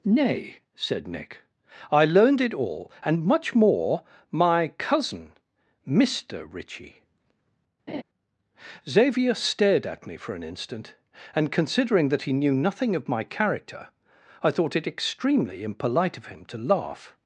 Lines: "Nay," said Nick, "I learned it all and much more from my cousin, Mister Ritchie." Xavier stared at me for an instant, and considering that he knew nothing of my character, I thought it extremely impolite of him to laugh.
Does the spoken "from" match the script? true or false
false